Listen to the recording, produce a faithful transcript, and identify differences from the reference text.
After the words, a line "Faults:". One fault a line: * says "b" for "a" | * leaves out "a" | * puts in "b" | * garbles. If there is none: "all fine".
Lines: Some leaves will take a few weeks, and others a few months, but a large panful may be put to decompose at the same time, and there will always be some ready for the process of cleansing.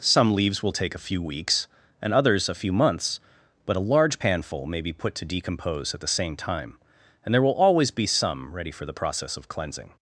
Some leaves will take a few weeks, and others a few months, but a large panful may be put to decompose at the same time, and there will always be some ready for the process of cleansing.
Faults:
all fine